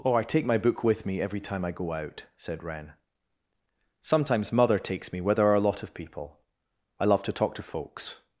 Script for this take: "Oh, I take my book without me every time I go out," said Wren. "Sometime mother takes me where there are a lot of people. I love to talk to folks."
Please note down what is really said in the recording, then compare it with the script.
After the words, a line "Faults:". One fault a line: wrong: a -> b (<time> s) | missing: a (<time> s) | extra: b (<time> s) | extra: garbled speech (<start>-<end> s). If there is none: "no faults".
"Oh, I take my book with me every time I go out," said Wren. "Sometimes mother takes me where there are a lot of people. I love to talk to folks."
Faults:
wrong: without -> with (0.8 s)
wrong: Sometime -> Sometimes (4.0 s)